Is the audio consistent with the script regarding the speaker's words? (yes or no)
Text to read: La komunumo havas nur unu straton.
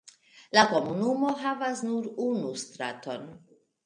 yes